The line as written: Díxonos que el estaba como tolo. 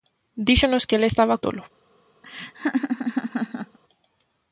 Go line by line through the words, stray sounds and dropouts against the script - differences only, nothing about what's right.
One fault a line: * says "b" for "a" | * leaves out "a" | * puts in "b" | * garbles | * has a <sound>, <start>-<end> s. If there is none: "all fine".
* leaves out "como"
* has a laugh, 2.2-3.8 s